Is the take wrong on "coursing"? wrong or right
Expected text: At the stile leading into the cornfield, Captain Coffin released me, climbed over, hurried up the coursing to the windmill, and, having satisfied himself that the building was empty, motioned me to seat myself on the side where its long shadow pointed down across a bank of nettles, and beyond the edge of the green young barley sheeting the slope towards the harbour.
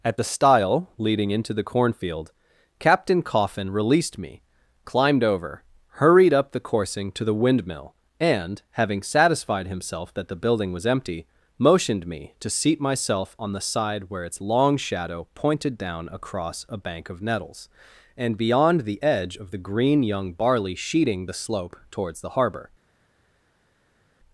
right